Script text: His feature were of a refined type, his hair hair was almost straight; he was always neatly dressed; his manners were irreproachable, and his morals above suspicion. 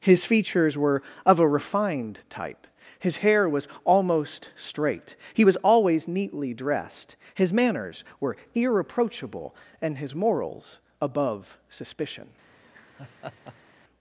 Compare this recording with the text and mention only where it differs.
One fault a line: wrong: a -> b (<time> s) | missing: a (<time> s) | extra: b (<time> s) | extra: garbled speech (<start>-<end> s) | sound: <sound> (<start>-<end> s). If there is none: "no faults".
wrong: feature -> features (0.2 s)
missing: hair (3.5 s)
sound: laugh (12.6-13.7 s)